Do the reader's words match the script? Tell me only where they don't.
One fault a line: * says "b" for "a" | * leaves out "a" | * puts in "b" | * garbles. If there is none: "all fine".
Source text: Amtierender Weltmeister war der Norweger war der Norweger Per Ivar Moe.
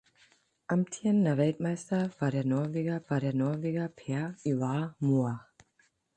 all fine